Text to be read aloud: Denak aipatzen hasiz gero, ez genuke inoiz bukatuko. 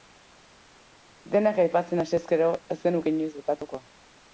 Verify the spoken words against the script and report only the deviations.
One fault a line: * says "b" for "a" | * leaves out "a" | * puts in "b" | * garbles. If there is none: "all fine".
all fine